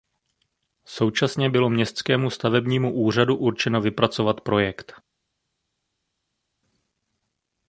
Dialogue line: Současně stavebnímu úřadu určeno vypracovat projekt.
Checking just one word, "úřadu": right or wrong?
right